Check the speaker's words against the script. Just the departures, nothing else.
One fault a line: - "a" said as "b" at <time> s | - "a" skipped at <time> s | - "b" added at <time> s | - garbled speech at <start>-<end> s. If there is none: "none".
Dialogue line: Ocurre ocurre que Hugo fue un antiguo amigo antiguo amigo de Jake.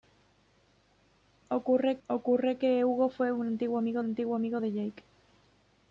none